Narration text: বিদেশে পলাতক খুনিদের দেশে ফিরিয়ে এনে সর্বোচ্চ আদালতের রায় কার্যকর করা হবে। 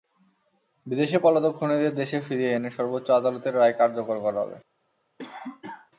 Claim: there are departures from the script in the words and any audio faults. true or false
true